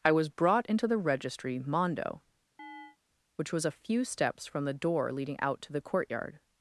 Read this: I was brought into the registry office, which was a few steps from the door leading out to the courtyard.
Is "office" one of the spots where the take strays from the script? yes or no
yes